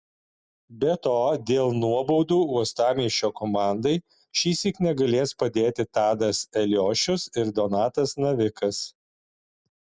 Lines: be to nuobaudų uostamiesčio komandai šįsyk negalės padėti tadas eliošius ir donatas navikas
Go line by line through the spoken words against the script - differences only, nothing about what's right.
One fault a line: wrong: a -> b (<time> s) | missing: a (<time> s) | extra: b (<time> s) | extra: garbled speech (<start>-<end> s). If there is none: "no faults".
extra: dėl (1.5 s)